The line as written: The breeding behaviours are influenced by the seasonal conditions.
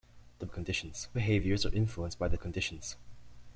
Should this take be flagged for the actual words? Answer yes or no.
yes